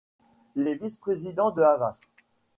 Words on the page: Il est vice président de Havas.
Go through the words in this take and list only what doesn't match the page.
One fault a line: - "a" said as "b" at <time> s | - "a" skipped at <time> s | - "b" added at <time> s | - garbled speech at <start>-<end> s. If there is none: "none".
none